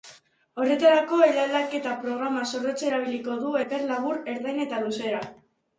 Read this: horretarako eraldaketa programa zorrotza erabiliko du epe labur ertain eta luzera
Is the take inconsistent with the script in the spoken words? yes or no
no